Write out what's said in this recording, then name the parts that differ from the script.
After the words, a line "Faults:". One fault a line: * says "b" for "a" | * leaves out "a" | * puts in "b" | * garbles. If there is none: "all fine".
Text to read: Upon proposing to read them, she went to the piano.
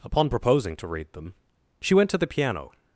Upon proposing to read them, she went to the piano.
Faults:
all fine